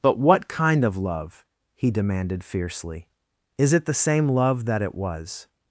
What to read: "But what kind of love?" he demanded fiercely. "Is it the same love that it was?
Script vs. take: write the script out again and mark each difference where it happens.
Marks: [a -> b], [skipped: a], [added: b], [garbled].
"But what kind of love?" he demanded fiercely. "Is it the same love that it was?